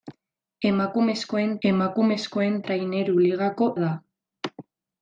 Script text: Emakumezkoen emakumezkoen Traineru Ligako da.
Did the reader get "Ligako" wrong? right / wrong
right